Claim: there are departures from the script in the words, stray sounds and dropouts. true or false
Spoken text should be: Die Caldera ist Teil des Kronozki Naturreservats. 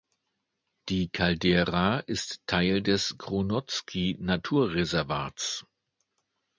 false